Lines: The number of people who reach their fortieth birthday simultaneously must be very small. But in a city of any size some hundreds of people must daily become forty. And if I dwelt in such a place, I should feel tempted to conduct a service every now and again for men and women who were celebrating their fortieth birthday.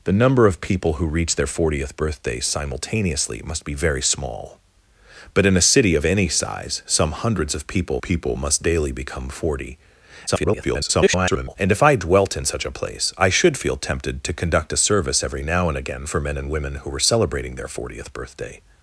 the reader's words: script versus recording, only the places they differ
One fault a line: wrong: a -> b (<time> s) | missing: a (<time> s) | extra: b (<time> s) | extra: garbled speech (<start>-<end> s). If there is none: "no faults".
extra: people (8.0 s)
extra: garbled speech (10.3-11.6 s)